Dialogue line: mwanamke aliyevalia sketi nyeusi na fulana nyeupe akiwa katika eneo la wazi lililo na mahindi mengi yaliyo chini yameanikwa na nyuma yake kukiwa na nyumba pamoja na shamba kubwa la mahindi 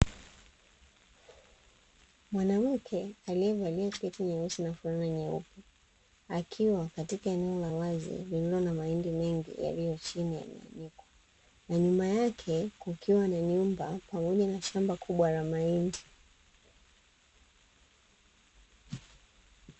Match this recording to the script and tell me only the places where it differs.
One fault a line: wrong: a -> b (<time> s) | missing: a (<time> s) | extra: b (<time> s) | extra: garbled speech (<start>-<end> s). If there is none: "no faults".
no faults